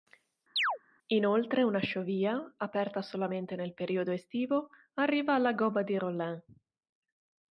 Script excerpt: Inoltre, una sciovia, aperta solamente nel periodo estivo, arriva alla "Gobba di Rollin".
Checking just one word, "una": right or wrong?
right